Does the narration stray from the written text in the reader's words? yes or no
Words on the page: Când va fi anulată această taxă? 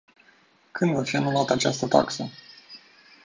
no